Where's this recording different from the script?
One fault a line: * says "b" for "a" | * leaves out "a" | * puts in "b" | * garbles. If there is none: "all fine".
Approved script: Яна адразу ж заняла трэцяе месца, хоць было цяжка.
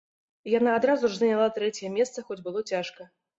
all fine